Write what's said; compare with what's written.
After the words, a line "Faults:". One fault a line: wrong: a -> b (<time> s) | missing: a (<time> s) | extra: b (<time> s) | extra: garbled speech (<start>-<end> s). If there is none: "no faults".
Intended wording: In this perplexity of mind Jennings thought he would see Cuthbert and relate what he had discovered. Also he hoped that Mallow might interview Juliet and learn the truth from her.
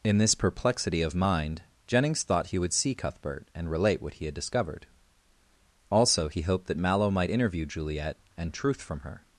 In this perplexity of mind Jennings thought he would see Cuthbert and relate what he had discovered. Also he hoped that Mallow might interview Juliet and truth from her.
Faults:
missing: learn the (8.5 s)